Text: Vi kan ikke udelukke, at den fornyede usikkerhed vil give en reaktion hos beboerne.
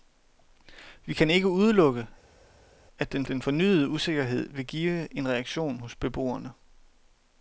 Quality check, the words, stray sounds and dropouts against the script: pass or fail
fail